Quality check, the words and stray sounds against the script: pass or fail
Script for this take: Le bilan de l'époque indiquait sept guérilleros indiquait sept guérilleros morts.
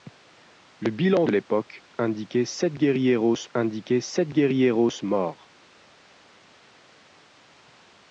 pass